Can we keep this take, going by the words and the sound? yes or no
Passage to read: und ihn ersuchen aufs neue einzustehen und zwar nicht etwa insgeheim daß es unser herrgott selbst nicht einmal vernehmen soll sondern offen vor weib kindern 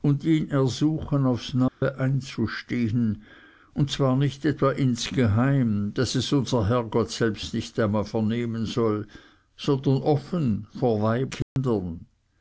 no